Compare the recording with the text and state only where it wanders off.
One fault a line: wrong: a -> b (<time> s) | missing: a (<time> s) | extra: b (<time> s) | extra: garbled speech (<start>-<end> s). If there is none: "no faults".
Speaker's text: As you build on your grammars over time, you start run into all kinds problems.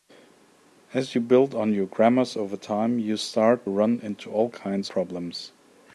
no faults